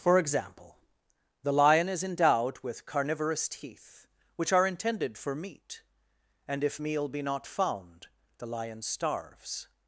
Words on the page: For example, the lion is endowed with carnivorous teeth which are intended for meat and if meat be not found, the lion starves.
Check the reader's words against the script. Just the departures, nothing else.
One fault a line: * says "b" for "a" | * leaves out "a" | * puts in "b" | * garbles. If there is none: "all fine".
* says "meal" for "meat"